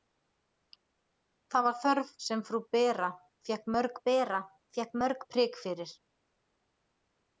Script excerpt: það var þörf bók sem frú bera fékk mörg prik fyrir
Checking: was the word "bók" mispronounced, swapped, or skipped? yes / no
yes